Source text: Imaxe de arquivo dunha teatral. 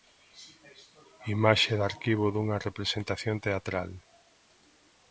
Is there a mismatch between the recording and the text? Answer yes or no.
yes